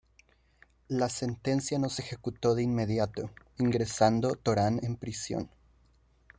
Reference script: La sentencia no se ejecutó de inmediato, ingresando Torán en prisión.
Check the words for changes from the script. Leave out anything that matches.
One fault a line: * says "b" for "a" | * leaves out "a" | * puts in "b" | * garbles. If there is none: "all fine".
all fine